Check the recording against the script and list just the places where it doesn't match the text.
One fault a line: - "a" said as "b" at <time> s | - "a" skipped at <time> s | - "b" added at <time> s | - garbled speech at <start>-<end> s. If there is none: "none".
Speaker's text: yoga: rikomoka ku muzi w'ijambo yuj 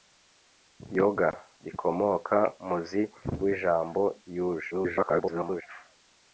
- "ku" skipped at 2.4 s
- garbled speech at 4.7-5.6 s